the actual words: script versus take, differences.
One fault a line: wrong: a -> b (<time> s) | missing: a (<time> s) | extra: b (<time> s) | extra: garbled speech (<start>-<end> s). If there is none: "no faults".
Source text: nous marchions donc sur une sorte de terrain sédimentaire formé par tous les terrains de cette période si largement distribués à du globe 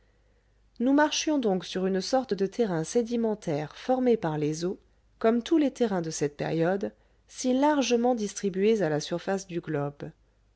extra: les eaux comme (4.4 s)
extra: la surface (8.9 s)